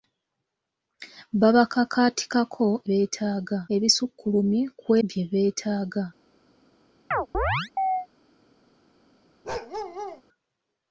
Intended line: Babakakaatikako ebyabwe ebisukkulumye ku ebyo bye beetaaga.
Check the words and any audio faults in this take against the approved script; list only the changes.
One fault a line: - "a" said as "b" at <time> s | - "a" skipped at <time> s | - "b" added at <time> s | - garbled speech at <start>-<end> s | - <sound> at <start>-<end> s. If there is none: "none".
- "ebyabwe" said as "beetaaga" at 2.9 s
- "ebyo" skipped at 4.9 s
- chirp at 7.1-8.1 s
- bark at 9.4-10.2 s